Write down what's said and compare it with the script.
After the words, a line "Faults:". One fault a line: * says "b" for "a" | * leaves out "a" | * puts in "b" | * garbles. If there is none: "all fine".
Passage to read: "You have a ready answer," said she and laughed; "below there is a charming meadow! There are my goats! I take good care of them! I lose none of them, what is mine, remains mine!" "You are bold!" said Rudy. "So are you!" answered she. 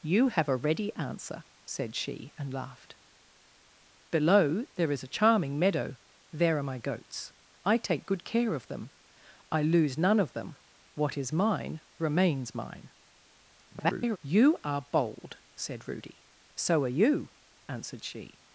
"You have a ready answer," said she and laughed; "below there is a charming meadow! There are my goats! I take good care of them! I lose none of them, what is mine, remains mine!" [garbled] "You are bold!" said Rudy. "So are you!" answered she.
Faults:
* garbles